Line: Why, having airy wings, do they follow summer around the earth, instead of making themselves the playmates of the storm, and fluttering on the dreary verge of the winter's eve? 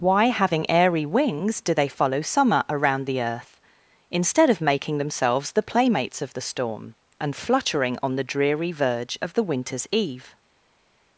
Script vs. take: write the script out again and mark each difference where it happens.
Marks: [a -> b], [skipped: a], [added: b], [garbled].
Why, having airy wings, do they follow summer around the earth, instead of making themselves the playmates of the storm, and fluttering on the dreary verge of the winter's eve?